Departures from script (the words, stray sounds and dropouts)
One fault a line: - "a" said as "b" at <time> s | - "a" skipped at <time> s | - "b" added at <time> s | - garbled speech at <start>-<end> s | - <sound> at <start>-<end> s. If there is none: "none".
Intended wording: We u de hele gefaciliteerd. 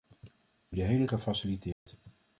- dropout at 1.7-1.9 s